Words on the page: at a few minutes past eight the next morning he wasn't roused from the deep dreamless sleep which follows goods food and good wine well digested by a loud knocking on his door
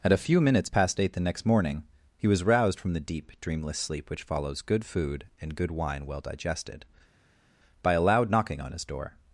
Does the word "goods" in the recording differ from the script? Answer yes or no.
yes